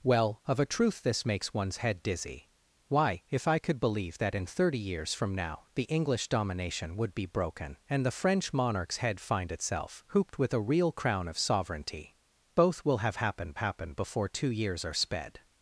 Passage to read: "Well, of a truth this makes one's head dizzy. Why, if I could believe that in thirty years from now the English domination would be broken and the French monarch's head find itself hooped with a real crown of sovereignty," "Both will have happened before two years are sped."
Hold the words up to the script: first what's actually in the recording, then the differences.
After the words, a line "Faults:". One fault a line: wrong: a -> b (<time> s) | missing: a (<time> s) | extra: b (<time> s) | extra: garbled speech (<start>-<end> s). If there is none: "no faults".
"Well, of a truth this makes one's head dizzy. Why, if I could believe that in thirty years from now the English domination would be broken and the French monarch's head find itself hooped with a real crown of sovereignty," "Both will have happened happened before two years are sped."
Faults:
extra: happened (13.6 s)